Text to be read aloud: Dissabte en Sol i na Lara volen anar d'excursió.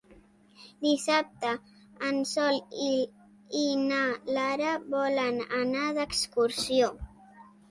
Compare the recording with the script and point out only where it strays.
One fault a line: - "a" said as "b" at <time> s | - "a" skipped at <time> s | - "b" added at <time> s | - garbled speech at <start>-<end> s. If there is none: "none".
none